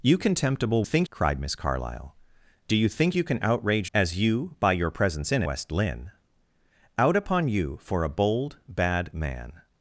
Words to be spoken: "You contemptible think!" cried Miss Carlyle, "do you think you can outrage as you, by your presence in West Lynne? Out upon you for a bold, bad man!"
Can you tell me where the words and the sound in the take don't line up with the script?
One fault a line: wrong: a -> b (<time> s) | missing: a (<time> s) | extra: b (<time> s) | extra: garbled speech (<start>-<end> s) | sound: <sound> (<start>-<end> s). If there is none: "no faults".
no faults